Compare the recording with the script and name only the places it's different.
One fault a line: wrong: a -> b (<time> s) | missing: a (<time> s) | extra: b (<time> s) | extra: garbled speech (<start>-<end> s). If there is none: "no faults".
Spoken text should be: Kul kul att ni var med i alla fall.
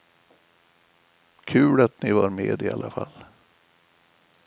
missing: kul (1.8 s)